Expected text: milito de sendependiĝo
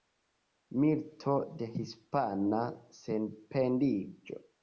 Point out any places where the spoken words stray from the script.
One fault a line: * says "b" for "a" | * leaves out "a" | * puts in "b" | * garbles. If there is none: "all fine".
* puts in "hispana"